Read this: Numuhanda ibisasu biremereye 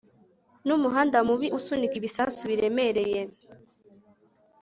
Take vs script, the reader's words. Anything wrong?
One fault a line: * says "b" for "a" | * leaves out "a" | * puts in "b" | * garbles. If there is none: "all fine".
* puts in "mubi usunika"